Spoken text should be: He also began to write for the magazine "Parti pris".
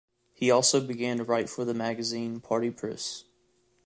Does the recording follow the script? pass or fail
pass